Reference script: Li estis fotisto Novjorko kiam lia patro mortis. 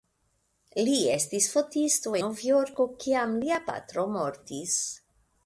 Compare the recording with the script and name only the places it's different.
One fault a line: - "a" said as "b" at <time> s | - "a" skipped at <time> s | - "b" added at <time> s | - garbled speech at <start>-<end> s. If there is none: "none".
none